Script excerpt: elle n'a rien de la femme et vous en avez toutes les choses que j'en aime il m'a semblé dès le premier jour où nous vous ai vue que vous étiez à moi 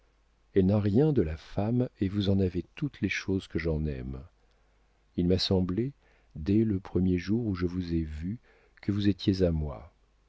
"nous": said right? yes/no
no